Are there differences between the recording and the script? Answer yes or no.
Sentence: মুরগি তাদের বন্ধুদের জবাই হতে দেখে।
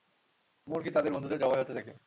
no